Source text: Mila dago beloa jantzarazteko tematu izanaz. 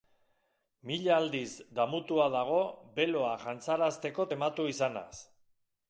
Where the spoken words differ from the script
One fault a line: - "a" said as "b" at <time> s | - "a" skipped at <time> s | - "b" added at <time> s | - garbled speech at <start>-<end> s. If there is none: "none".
- "aldiz damutua" added at 1.2 s